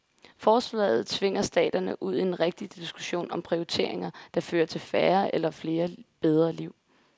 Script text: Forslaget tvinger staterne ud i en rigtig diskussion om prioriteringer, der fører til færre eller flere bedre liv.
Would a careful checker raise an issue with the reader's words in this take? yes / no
no